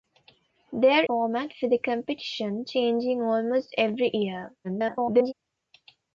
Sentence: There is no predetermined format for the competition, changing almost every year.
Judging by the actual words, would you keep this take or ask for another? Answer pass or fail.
fail